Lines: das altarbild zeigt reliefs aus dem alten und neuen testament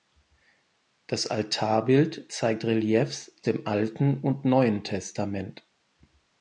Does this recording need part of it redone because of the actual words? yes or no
yes